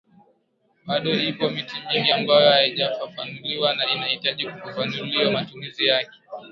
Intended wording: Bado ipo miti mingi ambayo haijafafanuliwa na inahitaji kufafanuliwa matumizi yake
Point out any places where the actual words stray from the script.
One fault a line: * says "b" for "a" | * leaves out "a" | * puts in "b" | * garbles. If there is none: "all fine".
all fine